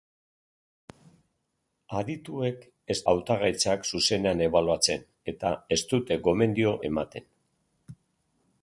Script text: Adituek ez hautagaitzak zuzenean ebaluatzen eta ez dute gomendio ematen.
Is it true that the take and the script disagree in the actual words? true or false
false